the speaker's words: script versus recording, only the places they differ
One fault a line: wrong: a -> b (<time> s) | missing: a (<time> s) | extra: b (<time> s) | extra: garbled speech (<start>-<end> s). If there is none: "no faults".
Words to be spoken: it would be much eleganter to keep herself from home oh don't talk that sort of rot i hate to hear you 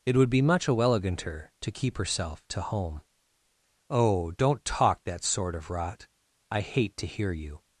wrong: from -> to (2.5 s)